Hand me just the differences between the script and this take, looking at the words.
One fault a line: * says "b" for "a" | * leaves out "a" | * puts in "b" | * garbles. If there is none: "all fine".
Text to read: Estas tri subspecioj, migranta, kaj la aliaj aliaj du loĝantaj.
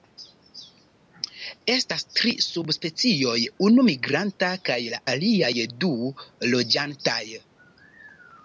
* puts in "unu"
* leaves out "aliaj"